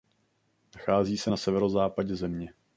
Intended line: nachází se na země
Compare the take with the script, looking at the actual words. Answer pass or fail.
fail